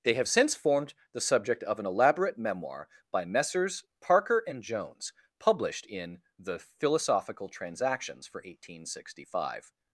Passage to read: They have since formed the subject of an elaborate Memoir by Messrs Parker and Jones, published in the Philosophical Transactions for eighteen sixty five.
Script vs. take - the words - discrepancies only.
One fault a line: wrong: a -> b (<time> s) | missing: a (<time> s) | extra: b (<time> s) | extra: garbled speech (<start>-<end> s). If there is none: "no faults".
no faults